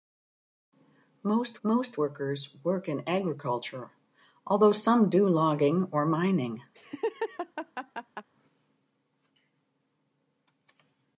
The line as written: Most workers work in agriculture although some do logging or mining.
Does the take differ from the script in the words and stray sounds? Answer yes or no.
yes